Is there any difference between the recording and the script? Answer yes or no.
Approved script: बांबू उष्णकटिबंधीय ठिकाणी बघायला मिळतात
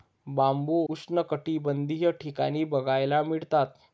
no